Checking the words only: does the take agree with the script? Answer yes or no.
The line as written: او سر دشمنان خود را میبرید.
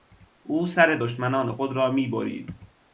yes